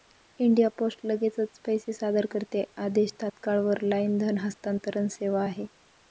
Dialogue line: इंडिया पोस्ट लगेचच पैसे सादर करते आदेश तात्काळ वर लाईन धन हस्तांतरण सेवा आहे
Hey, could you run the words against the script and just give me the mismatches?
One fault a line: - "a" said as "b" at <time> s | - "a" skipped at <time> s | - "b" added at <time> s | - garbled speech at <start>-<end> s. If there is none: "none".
none